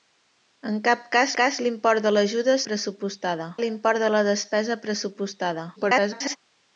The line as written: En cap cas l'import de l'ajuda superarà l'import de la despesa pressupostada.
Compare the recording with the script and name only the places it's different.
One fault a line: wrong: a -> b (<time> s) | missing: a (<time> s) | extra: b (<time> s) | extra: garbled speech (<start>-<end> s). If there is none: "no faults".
extra: cas (1.4 s)
wrong: superarà -> pressupostada (2.7 s)
extra: garbled speech (5.8-6.4 s)